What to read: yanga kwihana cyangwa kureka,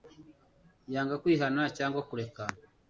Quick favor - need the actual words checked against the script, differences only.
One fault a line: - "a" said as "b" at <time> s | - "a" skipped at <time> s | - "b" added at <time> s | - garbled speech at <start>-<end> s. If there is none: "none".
none